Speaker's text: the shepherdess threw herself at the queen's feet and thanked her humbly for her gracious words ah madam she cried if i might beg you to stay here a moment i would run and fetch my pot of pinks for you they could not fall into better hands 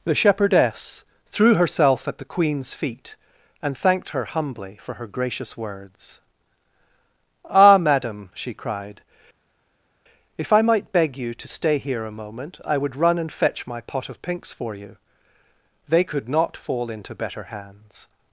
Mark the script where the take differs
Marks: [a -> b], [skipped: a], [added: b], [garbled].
the shepherdess threw herself at the queen's feet and thanked her humbly for her gracious words ah madam she cried if i might beg you to stay here a moment i would run and fetch my pot of pinks for you they could not fall into better hands